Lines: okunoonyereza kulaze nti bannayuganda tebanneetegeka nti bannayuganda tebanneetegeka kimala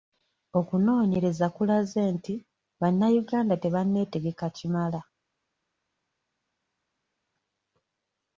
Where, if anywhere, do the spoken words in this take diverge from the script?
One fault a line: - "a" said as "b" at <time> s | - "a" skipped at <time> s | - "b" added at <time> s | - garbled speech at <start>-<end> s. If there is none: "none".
- "nti bannayuganda tebanneetegeka" skipped at 4.5 s